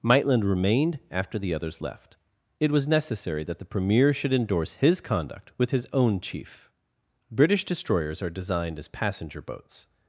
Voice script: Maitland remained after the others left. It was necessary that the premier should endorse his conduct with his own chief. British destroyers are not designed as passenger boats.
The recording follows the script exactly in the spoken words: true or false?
false